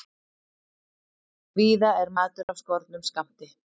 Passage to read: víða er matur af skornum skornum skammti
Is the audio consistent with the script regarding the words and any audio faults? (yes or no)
no